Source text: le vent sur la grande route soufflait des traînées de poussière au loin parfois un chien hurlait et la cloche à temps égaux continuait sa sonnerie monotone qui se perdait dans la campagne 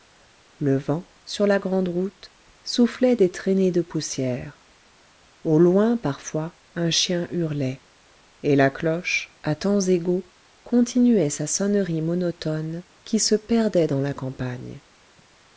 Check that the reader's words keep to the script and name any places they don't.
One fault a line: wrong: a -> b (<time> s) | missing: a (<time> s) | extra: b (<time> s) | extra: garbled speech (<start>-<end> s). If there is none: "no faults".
no faults